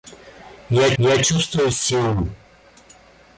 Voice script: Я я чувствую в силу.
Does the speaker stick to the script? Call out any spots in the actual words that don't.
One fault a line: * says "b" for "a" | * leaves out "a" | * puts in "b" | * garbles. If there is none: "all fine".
all fine